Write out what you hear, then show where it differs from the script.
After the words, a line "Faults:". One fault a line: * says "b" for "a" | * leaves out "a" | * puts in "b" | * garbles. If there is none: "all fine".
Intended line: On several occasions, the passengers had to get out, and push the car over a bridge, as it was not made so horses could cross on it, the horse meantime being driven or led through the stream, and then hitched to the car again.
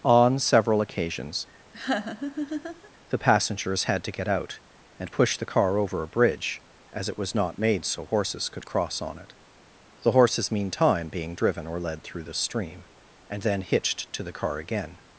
On several occasions, the passengers had to get out, and push the car over a bridge, as it was not made so horses could cross on it, the horses meantime being driven or led through the stream, and then hitched to the car again.
Faults:
* says "horses" for "horse"